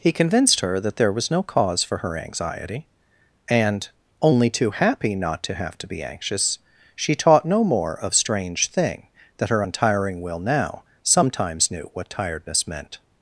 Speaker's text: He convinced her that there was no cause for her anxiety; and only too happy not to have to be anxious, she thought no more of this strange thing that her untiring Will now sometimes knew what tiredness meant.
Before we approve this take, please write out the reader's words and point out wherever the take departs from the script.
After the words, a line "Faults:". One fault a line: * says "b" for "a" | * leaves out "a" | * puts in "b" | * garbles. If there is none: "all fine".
He convinced her that there was no cause for her anxiety; and only too happy not to have to be anxious, she taught no more of strange thing that her untiring Will now sometimes knew what tiredness meant.
Faults:
* says "taught" for "thought"
* leaves out "this"